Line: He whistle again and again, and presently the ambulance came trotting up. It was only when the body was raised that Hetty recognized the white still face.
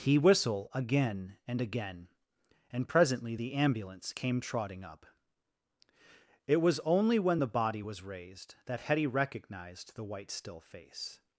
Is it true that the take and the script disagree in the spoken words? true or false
false